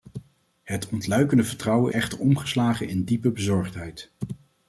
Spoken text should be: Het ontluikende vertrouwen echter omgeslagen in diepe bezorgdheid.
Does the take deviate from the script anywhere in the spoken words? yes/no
no